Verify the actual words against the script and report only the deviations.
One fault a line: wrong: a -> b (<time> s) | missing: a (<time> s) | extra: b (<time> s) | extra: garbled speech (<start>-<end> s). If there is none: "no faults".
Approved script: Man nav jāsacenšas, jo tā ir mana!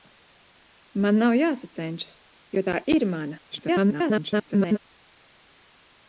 extra: garbled speech (3.5-4.8 s)